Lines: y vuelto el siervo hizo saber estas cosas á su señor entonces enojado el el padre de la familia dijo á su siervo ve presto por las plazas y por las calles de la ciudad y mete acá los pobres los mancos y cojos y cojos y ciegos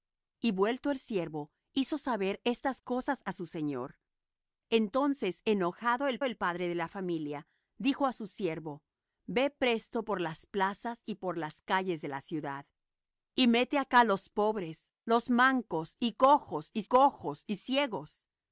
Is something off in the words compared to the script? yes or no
no